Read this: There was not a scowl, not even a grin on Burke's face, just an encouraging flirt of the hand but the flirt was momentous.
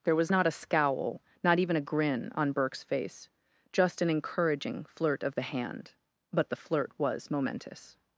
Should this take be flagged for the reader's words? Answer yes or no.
no